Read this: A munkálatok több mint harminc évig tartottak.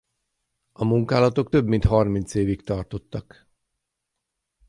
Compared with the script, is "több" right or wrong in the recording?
right